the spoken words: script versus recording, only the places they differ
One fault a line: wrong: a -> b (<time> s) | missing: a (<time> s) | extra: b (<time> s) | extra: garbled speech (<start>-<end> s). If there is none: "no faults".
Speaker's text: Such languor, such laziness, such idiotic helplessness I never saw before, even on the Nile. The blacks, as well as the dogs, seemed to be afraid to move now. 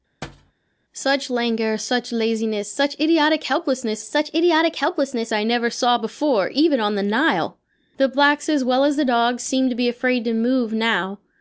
extra: such idiotic helplessness (4.0 s)